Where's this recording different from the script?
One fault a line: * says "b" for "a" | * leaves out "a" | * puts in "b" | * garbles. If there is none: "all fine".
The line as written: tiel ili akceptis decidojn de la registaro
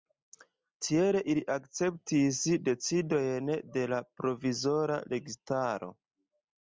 * puts in "provizora"